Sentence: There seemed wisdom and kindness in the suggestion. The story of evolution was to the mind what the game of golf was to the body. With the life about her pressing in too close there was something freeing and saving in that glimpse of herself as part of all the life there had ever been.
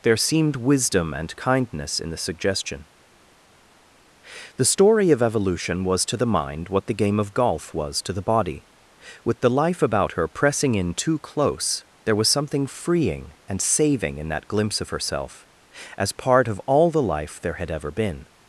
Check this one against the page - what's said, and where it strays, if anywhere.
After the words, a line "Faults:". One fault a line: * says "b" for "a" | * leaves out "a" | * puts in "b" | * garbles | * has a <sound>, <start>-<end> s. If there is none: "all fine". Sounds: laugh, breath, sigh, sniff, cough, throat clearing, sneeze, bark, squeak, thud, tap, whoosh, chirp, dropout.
There seemed wisdom and kindness in the suggestion. The story of evolution was to the mind what the game of golf was to the body. With the life about her pressing in too close there was something freeing and saving in that glimpse of herself as part of all the life there had ever been.
Faults:
all fine